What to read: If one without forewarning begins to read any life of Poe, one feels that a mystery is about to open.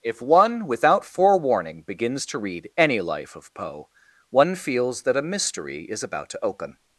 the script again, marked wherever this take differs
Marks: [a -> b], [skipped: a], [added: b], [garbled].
If one without forewarning begins to read any life of Poe, one feels that a mystery is about to open.